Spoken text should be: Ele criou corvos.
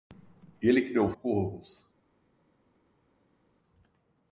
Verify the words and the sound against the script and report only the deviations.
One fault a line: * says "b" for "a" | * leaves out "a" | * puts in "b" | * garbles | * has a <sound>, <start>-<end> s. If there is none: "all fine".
all fine